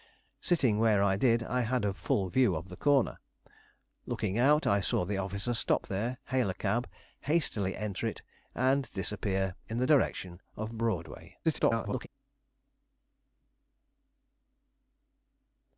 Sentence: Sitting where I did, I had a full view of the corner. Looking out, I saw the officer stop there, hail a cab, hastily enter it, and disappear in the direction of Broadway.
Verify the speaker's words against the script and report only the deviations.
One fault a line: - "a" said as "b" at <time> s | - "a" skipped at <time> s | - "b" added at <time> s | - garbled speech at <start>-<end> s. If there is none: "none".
- garbled speech at 11.4-12.1 s